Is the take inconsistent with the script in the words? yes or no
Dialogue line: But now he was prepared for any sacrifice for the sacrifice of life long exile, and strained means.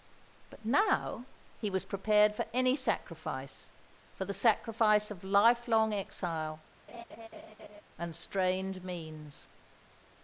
no